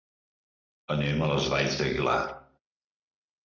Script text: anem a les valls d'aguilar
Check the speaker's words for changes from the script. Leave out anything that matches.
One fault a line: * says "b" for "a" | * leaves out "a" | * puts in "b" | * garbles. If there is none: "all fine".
all fine